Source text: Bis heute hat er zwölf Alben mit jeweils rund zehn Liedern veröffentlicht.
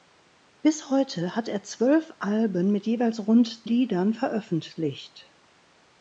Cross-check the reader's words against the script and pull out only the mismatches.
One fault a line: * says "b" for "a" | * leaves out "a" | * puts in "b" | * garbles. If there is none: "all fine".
* leaves out "zehn"